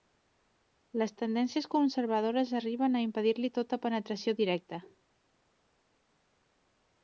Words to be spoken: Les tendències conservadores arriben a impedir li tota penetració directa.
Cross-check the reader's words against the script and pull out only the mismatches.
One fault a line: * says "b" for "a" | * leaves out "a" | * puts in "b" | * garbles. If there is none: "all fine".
all fine